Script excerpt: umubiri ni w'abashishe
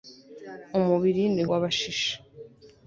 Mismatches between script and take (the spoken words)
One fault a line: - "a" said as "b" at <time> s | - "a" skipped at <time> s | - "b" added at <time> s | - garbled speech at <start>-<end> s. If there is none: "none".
none